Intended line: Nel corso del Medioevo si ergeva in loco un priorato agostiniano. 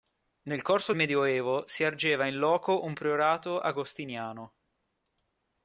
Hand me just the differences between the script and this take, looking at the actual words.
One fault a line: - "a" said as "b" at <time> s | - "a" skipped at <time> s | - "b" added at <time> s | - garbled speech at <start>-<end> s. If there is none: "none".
- "del" skipped at 0.9 s